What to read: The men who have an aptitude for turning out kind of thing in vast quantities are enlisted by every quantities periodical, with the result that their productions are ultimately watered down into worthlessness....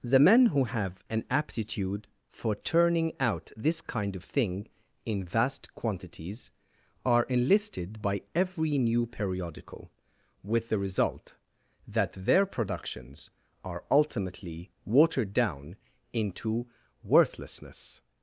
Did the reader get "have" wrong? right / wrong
right